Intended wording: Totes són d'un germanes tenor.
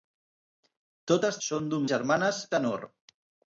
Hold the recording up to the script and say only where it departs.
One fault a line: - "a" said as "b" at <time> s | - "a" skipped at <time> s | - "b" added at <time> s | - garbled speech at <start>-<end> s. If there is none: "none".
none